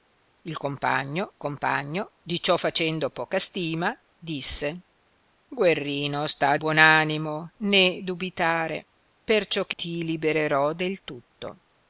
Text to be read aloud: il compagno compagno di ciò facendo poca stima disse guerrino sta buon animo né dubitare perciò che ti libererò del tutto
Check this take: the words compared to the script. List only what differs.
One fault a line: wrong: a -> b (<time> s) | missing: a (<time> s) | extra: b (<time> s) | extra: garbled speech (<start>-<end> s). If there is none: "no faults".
no faults